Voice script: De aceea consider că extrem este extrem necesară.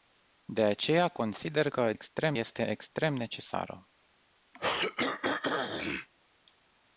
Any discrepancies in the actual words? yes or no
no